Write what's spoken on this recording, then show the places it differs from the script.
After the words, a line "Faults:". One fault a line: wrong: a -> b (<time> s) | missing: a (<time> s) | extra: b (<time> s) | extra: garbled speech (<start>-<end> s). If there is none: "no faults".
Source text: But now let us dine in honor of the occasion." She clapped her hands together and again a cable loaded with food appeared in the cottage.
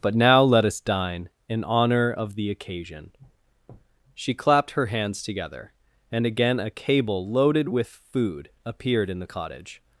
But now let us dine in honor of the occasion." She clapped her hands together and again a cable loaded with food appeared in the cottage.
Faults:
no faults